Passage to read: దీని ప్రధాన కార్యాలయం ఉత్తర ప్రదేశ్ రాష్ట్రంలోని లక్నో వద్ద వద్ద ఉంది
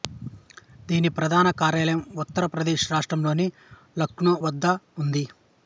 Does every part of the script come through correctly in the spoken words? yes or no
no